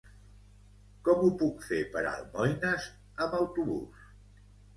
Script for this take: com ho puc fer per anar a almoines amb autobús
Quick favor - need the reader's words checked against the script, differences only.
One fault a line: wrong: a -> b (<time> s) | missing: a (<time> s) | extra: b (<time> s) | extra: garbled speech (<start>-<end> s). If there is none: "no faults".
missing: anar (2.0 s)